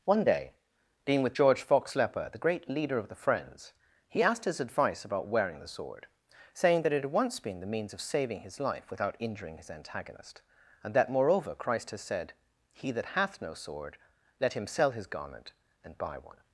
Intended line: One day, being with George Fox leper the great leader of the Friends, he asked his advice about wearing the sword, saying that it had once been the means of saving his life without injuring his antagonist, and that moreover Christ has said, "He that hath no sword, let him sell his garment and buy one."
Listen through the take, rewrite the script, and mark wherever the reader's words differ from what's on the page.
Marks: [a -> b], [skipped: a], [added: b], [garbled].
One day, being with George Fox leper the great leader of the Friends, he asked his advice about wearing the sword, saying that it had once been the means of saving his life without injuring his antagonist, and that moreover Christ has said, "He that hath no sword, let him sell his garment and buy one."